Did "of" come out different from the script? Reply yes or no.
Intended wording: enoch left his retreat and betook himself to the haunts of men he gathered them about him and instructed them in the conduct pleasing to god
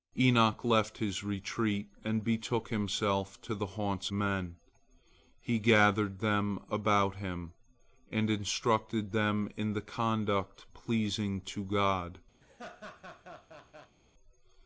yes